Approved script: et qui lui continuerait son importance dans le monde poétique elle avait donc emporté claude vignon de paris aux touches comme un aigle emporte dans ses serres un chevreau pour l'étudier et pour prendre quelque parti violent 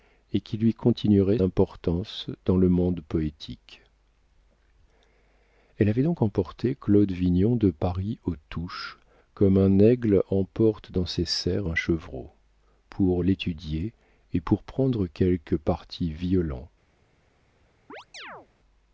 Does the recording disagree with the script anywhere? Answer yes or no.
yes